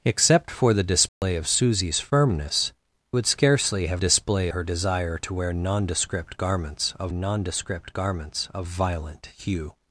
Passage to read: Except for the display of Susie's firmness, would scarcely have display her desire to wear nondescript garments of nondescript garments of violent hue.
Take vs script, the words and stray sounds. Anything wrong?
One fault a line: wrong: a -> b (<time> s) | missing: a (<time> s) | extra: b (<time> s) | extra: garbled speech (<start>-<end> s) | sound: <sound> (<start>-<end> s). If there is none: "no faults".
sound: dropout (1.1-1.2 s)